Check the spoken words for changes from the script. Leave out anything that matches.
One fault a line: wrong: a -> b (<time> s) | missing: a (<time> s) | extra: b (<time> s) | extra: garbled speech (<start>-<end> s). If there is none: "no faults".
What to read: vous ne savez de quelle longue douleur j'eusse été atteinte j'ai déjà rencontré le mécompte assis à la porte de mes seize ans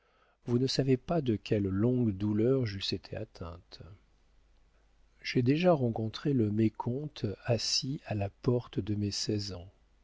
extra: pas (1.0 s)